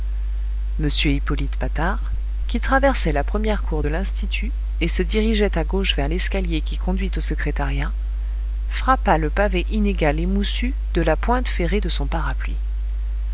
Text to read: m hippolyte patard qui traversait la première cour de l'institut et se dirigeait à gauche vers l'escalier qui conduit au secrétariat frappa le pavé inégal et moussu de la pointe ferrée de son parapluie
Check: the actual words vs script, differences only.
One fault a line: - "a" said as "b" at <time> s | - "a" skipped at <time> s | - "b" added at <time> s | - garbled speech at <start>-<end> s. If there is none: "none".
none